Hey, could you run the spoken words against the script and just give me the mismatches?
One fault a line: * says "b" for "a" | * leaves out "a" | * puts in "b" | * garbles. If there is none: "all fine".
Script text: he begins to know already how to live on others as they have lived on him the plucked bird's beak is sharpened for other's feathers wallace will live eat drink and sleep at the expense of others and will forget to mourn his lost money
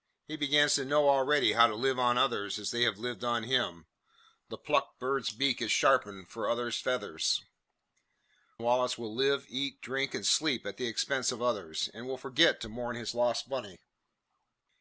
all fine